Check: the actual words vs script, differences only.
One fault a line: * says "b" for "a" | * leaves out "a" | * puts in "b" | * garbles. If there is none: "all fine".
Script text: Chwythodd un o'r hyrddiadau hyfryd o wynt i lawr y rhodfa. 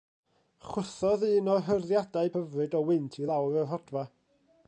all fine